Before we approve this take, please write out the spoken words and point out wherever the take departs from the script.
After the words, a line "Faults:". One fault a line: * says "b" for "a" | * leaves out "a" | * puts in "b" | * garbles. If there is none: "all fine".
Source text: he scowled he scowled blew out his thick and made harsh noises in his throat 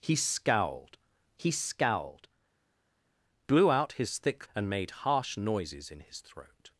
he scowled he scowled blew out his thick and made harsh noises in his throat
Faults:
all fine